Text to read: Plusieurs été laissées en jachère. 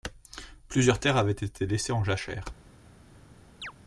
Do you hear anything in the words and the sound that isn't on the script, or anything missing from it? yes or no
yes